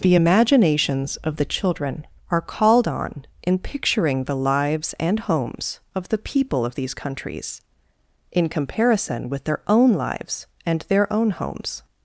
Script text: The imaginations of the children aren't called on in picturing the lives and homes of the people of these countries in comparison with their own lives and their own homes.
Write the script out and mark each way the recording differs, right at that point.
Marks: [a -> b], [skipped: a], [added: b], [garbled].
The imaginations of the children [aren't -> are] called on in picturing the lives and homes of the people of these countries in comparison with their own lives and their own homes.